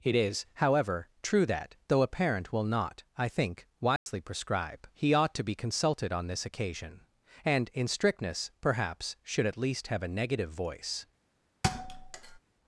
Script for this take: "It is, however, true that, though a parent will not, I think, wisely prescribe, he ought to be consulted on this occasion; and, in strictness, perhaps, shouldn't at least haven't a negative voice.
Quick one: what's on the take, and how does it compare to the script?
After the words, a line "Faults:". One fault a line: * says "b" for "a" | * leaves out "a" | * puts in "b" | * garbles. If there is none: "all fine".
"It is, however, true that, though a parent will not, I think, wisely prescribe, he ought to be consulted on this occasion; and, in strictness, perhaps, should at least have a negative voice.
Faults:
* says "should" for "shouldn't"
* says "have" for "haven't"